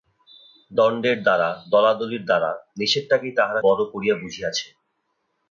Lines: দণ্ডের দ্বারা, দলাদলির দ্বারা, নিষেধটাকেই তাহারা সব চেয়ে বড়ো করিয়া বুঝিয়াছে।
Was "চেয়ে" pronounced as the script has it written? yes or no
no